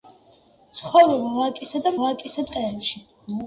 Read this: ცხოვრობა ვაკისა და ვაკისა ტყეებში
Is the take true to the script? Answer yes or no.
yes